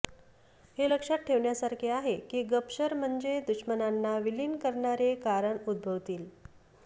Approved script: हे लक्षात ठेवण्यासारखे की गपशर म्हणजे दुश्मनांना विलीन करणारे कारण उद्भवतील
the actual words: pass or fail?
fail